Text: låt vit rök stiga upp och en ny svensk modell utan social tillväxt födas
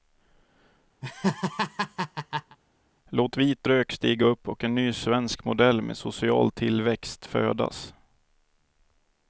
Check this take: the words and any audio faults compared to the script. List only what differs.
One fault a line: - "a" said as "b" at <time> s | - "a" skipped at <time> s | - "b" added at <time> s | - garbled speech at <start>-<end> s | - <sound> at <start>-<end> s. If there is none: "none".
- laugh at 1.0-2.6 s
- "utan" said as "med" at 5.8 s